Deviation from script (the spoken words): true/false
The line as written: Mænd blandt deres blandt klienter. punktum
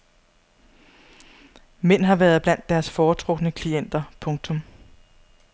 true